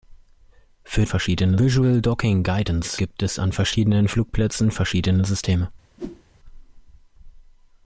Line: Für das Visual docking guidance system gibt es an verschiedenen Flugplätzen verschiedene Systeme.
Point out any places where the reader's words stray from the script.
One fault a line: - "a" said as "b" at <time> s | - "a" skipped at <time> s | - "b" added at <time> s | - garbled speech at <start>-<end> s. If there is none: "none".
- "das" said as "verschiedene" at 1.0 s
- "system" skipped at 3.0 s